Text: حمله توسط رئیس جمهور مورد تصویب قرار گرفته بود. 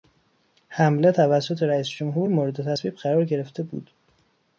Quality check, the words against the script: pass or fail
pass